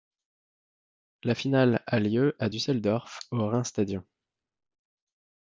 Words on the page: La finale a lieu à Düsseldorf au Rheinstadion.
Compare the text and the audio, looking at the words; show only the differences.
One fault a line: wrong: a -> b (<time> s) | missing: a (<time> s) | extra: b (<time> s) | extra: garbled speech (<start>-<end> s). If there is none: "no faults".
no faults